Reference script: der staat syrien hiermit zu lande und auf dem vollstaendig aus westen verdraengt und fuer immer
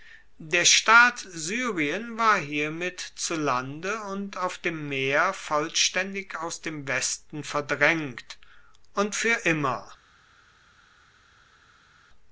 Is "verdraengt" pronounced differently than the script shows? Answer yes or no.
no